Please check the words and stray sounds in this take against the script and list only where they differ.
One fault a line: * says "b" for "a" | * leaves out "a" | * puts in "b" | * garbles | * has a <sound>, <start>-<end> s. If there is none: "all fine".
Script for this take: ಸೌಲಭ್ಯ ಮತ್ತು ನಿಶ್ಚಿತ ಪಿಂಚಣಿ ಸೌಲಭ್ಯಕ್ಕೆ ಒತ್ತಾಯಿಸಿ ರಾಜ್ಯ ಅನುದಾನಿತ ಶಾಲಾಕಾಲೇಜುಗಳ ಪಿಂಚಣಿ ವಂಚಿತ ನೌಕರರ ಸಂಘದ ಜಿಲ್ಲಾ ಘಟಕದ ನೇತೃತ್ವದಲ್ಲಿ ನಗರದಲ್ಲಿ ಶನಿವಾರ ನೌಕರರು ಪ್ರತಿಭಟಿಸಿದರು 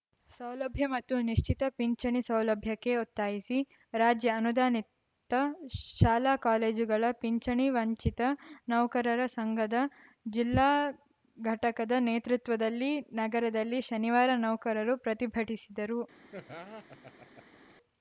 * has a laugh, 16.3-17.7 s